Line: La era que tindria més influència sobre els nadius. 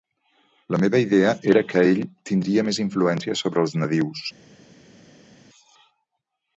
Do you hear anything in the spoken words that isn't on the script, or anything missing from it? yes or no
yes